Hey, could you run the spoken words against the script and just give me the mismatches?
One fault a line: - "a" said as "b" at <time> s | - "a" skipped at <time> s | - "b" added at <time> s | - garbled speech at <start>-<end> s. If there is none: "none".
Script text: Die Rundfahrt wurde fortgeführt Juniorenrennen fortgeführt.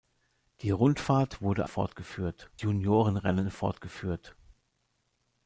none